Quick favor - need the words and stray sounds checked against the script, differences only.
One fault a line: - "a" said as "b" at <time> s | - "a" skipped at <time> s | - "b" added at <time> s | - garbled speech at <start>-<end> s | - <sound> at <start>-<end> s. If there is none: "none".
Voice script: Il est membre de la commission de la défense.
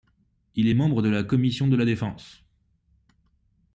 none